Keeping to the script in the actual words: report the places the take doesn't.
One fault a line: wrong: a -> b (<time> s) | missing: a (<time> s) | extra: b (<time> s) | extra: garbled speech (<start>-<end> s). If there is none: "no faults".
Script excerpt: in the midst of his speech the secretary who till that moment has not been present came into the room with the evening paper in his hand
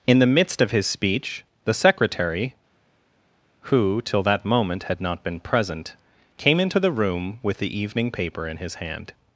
wrong: has -> had (4.8 s)